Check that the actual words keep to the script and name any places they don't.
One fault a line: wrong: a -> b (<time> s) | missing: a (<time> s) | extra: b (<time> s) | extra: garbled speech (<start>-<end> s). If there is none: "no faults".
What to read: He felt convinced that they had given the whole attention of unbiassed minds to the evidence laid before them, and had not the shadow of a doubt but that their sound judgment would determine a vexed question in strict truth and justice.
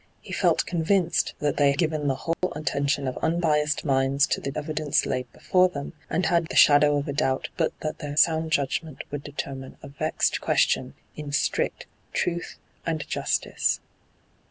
missing: had (1.7 s)
missing: not (6.5 s)